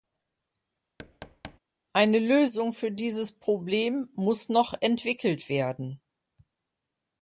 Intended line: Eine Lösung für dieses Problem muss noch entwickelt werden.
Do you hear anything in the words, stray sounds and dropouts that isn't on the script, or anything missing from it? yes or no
yes